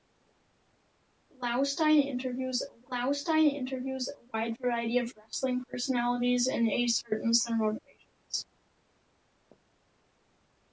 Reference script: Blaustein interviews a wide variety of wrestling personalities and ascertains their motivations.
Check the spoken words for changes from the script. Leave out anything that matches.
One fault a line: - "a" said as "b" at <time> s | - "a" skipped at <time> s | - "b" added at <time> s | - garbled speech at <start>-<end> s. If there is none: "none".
- "blaustein interviews a" added at 2.9 s